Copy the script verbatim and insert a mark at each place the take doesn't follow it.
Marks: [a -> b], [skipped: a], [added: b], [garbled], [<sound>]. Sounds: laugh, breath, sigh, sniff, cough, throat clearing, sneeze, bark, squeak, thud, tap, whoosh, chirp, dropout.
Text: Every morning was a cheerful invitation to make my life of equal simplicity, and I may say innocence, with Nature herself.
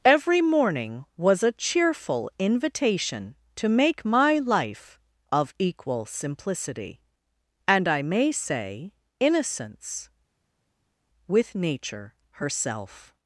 Every morning was a cheerful invitation to make my life of equal simplicity, and I may say innocence, with Nature herself.